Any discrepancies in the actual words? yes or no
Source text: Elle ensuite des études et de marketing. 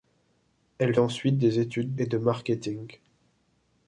no